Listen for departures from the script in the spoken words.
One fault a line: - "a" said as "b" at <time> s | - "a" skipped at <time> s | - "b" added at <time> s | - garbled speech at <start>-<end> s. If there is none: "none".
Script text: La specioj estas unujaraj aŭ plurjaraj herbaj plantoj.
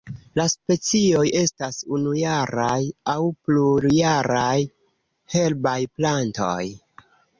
none